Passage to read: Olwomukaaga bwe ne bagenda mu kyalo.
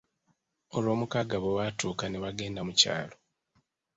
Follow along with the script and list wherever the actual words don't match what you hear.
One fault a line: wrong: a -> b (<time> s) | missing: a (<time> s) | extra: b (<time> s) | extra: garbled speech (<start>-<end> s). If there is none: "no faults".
extra: lwatuuka (1.6 s)